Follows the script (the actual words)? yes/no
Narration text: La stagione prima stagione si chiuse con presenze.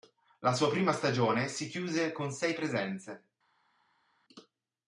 no